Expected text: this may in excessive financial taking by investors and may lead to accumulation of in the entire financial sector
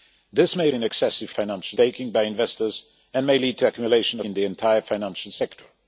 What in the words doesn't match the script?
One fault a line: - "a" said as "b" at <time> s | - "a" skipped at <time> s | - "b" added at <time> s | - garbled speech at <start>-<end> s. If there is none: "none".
none